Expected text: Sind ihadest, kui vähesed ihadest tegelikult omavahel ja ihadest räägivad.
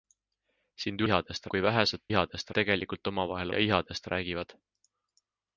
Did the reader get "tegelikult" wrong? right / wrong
right